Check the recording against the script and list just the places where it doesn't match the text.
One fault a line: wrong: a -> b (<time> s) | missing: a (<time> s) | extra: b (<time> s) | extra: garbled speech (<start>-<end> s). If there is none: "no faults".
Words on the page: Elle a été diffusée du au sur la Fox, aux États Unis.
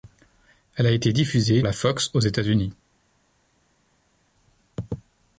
missing: du au sur (1.6 s)